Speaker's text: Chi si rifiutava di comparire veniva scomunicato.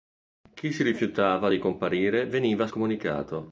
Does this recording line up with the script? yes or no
yes